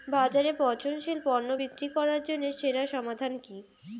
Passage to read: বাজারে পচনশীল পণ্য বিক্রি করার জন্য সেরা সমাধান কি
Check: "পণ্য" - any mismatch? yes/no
no